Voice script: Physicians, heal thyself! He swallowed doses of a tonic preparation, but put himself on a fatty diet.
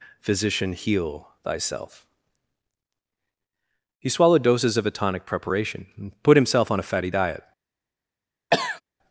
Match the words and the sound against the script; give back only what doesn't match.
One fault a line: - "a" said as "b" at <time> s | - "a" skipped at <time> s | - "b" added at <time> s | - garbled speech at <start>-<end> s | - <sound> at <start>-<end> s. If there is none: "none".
- "Physicians" said as "Physician" at 0.2 s
- "but" said as "and" at 6.0 s
- cough at 8.5-8.8 s